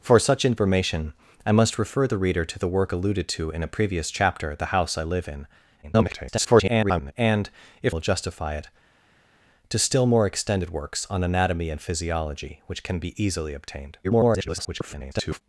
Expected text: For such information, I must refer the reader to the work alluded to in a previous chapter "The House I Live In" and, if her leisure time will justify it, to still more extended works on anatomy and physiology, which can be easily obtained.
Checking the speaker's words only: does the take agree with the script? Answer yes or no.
no